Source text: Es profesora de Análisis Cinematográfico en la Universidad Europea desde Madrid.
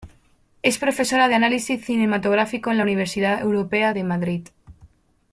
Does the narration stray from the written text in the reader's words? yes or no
yes